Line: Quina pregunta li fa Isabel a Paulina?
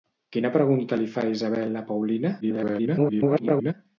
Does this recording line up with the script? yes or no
no